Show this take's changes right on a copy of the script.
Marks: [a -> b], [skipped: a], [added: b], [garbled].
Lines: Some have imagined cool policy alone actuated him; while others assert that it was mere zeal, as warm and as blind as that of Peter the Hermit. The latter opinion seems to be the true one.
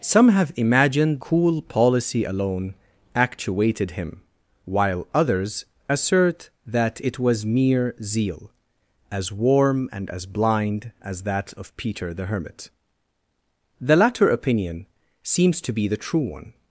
Some have imagined cool policy alone actuated him; while others assert that it was mere zeal, as warm and as blind as that of Peter the Hermit. The latter opinion seems to be the true one.